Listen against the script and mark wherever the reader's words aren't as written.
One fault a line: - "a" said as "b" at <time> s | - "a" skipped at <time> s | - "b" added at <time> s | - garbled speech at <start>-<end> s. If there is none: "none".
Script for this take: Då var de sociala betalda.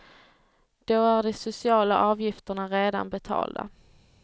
- "var" said as "är" at 1.1 s
- "avgifterna redan" added at 2.0 s